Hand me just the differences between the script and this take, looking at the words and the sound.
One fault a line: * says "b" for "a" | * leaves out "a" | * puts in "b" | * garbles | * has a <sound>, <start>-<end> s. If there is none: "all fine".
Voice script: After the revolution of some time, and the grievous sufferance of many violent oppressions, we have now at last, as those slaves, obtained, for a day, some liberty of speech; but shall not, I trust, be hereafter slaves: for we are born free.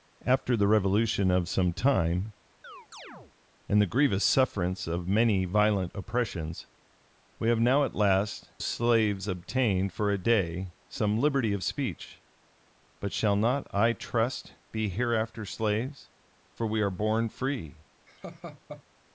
* has a chirp, 2.6-3.3 s
* leaves out "as those"
* has a laugh, 18.1-18.8 s